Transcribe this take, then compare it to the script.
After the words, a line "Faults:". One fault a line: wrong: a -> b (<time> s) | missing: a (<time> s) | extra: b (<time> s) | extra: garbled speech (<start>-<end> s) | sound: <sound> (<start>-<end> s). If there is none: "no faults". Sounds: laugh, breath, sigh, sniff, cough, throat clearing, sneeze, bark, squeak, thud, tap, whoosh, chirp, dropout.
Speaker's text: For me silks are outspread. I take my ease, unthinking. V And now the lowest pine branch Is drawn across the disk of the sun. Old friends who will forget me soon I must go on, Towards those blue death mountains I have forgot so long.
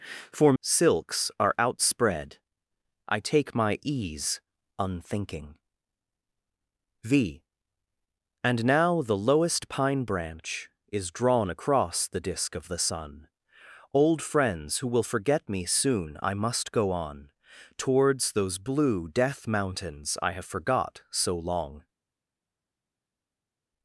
For silks are outspread. I take my ease, unthinking. V And now the lowest pine branch Is drawn across the disk of the sun. Old friends who will forget me soon I must go on, Towards those blue death mountains I have forgot so long.
Faults:
missing: me (0.5 s)